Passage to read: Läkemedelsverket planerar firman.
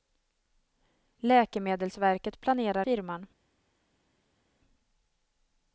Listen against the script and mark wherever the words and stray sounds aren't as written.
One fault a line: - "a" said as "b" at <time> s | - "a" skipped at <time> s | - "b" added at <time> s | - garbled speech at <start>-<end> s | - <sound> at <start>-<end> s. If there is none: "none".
none